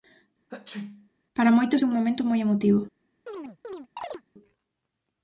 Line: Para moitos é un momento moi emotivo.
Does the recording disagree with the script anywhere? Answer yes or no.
no